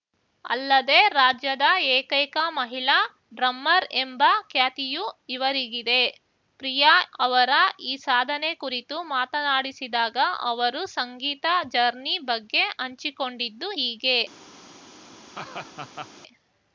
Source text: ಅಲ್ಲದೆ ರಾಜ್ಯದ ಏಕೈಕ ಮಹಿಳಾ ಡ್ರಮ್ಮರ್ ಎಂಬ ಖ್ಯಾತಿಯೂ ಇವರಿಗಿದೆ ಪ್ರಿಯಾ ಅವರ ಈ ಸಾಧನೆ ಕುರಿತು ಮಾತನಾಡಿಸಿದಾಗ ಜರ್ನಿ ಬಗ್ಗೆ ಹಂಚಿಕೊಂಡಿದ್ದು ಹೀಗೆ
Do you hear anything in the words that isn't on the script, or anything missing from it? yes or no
yes